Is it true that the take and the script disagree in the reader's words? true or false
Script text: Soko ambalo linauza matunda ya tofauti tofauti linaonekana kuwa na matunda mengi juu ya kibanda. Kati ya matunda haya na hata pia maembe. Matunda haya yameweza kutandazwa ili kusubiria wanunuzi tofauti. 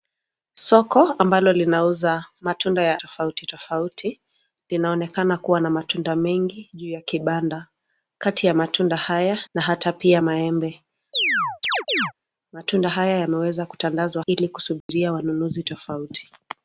false